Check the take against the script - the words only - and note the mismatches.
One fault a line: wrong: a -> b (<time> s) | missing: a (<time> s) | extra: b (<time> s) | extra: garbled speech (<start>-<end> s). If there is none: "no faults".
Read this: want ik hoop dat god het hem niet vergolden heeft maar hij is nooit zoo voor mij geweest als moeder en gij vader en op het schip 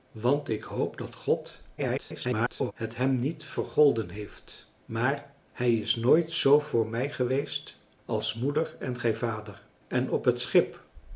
extra: garbled speech (1.8-2.7 s)